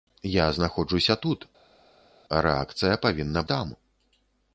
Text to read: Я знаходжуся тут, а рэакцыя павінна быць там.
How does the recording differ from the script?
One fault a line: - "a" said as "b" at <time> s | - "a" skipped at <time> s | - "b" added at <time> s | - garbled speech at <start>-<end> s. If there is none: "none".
- "быць" skipped at 3.4 s